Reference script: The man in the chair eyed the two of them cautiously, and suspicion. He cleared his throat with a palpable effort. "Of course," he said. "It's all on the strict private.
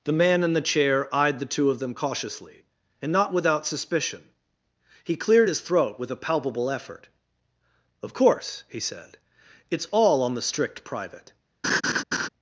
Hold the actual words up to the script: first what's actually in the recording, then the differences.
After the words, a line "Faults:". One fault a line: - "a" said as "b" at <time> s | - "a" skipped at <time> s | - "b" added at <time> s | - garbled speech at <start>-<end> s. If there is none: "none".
The man in the chair eyed the two of them cautiously, and not without suspicion. He cleared his throat with a palpable effort. "Of course," he said. "It's all on the strict private.
Faults:
- "not without" added at 3.1 s